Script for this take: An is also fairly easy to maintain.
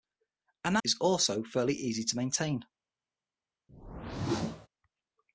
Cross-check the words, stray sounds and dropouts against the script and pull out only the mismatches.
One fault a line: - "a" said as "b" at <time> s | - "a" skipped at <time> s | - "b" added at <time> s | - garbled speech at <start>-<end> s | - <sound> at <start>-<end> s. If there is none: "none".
- whoosh at 3.7-4.7 s